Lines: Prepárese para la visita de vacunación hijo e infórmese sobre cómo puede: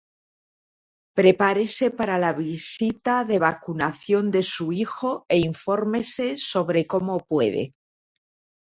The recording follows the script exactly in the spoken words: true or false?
false